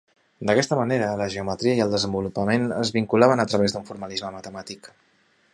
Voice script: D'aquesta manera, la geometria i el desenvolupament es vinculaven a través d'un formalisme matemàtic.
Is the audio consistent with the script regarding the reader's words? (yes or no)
yes